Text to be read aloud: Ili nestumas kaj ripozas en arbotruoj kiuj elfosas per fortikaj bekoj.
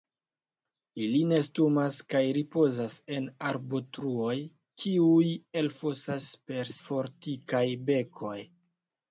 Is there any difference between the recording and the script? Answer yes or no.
no